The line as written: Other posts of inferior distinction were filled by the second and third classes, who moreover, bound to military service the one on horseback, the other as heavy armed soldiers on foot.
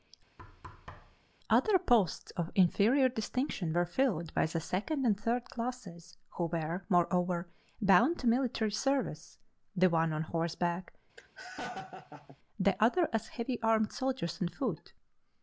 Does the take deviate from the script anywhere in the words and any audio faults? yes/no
yes